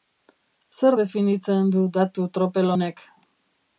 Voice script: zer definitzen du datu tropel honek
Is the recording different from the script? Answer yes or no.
no